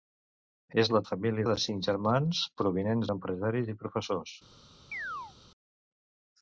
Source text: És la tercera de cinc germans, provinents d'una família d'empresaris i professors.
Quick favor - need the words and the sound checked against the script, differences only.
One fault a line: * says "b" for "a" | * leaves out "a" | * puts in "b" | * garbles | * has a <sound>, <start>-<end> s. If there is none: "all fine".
* says "família" for "tercera"
* leaves out "d'una família"
* has a chirp, 4.9-5.3 s